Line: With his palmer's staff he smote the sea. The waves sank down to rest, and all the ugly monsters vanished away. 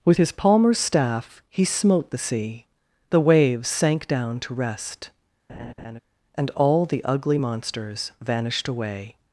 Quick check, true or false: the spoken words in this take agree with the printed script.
true